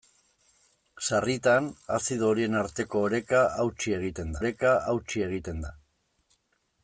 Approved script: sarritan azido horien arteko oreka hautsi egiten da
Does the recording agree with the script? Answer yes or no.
no